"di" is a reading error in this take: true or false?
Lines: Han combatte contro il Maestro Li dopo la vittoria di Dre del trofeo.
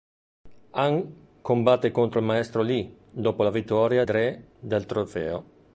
true